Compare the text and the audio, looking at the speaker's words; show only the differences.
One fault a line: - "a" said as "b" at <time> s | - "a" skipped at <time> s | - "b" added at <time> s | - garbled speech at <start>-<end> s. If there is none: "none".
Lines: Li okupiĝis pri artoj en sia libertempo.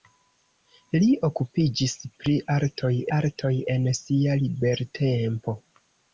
- "artoj" added at 3.2 s